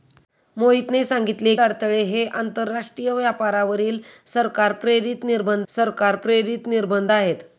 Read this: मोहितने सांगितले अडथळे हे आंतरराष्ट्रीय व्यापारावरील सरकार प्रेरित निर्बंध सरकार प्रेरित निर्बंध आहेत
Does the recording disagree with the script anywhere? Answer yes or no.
no